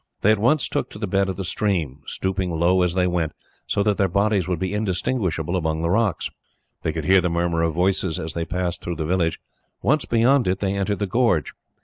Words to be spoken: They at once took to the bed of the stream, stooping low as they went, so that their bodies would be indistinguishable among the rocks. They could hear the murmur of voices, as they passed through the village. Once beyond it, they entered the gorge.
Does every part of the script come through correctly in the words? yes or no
yes